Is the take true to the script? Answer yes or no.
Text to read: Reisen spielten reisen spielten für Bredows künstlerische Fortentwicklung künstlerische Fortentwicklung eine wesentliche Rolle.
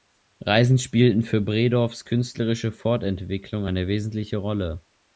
no